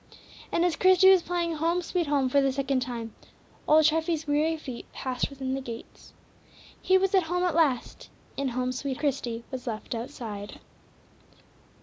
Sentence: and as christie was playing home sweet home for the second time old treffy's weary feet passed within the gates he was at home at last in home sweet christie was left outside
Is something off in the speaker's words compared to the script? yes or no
no